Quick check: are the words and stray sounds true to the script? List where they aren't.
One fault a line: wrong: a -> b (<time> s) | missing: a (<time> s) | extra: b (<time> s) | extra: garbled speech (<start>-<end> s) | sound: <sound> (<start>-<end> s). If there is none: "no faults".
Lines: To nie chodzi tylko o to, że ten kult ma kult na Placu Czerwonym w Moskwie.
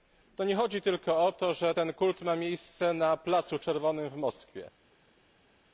wrong: kult -> miejsce (2.4 s)